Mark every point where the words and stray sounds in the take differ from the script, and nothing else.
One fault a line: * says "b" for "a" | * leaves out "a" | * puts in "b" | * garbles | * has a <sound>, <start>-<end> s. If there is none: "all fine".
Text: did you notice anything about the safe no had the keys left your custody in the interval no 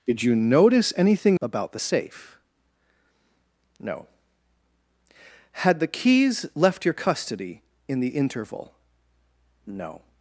all fine